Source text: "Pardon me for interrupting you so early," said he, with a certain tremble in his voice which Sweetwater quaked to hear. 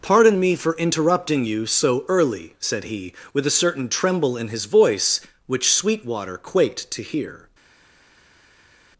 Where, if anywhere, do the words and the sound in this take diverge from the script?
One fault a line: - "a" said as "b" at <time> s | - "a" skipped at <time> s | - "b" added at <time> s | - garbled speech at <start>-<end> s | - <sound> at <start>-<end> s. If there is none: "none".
none